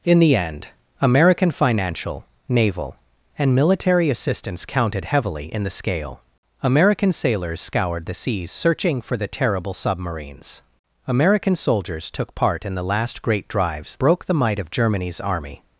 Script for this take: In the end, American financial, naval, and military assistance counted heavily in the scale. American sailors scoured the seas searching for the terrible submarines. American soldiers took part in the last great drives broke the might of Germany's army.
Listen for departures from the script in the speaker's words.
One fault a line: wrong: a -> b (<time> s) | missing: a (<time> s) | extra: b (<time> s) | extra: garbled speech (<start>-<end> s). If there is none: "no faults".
no faults